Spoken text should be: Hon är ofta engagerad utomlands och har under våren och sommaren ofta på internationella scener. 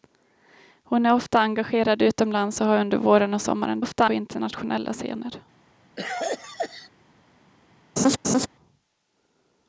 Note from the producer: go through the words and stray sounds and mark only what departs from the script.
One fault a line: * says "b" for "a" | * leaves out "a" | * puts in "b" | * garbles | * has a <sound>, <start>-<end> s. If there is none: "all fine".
* has a cough, 6.0-6.9 s
* has a laugh, 8.0-8.5 s